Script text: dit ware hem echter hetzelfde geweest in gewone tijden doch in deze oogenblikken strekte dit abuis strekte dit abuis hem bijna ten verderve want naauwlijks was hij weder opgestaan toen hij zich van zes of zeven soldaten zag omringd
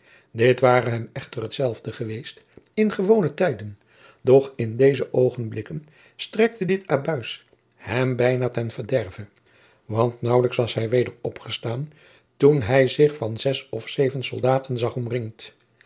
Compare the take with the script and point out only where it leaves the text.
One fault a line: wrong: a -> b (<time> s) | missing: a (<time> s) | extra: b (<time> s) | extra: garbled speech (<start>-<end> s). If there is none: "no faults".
missing: strekte dit abuis (7.4 s)